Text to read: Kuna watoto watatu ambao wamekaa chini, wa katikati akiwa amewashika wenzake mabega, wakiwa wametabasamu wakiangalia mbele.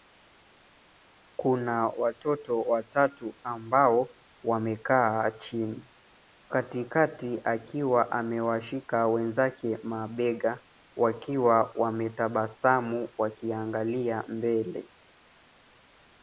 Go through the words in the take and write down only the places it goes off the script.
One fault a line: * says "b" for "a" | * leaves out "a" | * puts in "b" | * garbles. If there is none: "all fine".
* leaves out "wa"